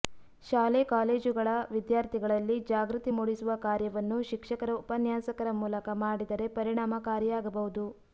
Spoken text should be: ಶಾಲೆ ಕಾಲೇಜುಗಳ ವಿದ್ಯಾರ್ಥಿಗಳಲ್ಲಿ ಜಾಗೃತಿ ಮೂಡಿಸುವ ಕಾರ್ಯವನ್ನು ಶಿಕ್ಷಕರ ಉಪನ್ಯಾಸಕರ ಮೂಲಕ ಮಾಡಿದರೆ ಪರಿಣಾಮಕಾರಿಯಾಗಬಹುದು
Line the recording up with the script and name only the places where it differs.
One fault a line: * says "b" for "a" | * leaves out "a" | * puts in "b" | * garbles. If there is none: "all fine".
all fine